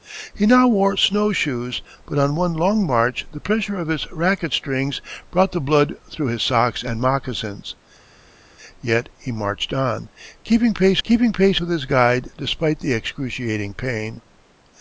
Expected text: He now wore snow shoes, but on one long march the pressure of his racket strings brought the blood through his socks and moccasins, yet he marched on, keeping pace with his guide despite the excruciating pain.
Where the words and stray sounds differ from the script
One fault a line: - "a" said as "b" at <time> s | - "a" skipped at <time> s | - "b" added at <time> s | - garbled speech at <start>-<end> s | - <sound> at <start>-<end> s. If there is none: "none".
- "keeping pace" added at 11.0 s